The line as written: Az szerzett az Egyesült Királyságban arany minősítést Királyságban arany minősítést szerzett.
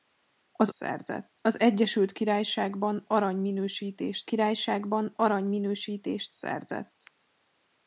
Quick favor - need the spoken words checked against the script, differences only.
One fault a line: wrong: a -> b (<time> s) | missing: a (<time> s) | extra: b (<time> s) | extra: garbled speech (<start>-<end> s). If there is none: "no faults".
no faults